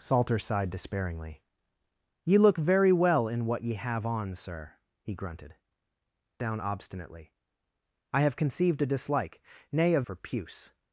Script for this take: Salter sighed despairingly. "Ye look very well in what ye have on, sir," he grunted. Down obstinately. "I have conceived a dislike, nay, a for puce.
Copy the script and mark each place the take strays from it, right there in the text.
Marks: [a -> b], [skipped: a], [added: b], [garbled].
Salter sighed despairingly. "Ye look very well in what ye have on, sir," he grunted. Down obstinately. "I have conceived a dislike, nay, a for puce.